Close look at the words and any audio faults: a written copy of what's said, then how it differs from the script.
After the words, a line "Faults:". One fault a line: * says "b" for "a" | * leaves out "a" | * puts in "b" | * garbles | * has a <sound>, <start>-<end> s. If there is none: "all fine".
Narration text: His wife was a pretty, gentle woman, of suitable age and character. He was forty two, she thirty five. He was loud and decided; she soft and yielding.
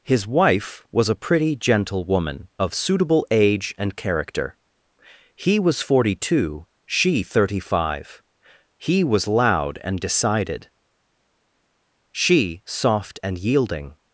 His wife was a pretty, gentle woman, of suitable age and character. He was forty two, she thirty five. He was loud and decided; she soft and yielding.
Faults:
all fine